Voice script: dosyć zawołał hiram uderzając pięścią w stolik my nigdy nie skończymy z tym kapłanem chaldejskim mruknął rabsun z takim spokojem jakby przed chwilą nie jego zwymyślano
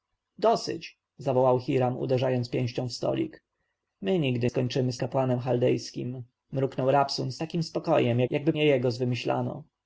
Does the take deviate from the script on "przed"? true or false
true